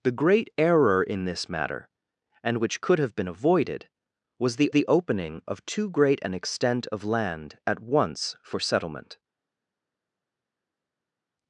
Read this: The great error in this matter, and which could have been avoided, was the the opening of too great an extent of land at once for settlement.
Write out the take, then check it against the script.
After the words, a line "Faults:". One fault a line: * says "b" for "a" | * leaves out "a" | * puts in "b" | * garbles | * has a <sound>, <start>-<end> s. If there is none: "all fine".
The great error in this matter, and which could have been avoided, was the the opening of too great an extent of land at once for settlement.
Faults:
all fine